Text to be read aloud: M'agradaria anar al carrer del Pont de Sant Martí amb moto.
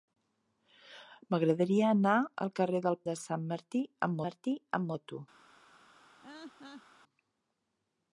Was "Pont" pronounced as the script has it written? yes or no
no